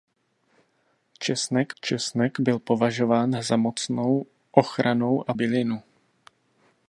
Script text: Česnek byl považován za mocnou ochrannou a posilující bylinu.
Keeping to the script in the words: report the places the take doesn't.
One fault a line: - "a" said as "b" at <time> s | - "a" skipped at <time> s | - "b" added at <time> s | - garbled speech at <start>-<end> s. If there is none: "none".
- "česnek" added at 1.8 s
- "posilující" skipped at 5.3 s